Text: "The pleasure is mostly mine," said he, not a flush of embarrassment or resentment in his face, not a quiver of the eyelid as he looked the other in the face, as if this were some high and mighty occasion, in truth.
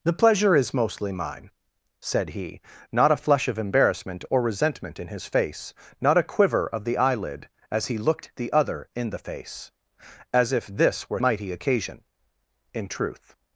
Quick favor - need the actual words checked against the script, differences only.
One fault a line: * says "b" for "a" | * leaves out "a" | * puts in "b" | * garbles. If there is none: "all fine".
* leaves out "some high and"